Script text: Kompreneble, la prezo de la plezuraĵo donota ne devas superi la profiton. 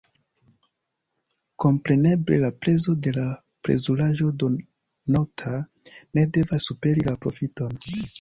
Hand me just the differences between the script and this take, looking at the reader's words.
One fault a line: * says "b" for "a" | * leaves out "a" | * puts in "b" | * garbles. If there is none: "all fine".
all fine